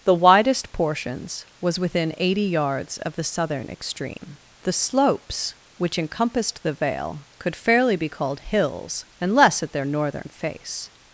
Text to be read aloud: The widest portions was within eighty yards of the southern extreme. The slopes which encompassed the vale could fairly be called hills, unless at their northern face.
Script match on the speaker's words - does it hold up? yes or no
yes